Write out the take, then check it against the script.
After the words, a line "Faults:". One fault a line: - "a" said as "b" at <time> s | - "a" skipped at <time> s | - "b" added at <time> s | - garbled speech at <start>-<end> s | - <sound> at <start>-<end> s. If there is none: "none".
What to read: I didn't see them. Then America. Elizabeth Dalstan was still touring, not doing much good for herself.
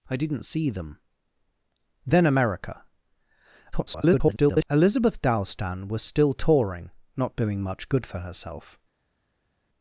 I didn't see them. Then America. [garbled] Elizabeth Dalstan was still touring, not doing much good for herself.
Faults:
- garbled speech at 3.7-4.7 s